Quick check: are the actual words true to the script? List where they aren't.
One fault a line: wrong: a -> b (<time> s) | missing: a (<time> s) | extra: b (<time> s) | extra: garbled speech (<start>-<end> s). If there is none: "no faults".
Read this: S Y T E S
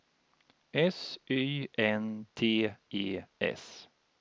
extra: N (1.8 s)